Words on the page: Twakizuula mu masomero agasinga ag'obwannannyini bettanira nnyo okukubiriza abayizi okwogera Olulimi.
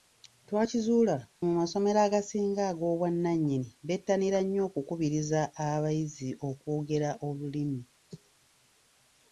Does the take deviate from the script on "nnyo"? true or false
false